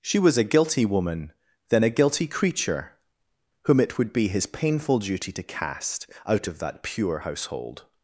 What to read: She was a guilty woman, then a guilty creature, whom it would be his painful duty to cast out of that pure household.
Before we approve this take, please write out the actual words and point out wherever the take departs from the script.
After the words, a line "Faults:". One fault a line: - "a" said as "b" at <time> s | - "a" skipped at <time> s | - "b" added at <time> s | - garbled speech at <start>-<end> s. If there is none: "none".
She was a guilty woman, then a guilty creature, whom it would be his painful duty to cast out of that pure household.
Faults:
none